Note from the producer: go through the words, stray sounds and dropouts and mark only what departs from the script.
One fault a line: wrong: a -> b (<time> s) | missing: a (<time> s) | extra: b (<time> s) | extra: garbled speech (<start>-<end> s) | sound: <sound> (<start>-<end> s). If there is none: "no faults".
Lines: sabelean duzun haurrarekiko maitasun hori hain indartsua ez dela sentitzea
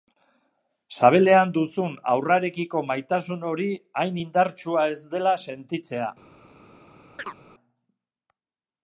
sound: chirp (7.2-7.4 s)